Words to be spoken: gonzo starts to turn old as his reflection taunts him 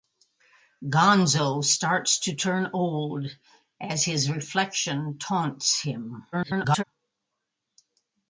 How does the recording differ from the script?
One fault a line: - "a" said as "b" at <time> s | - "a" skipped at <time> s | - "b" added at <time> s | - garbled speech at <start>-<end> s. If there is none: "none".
- garbled speech at 6.3-6.8 s